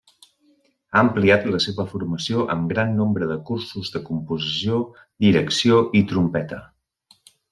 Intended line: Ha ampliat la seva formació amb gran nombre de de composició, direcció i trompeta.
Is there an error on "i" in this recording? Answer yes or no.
no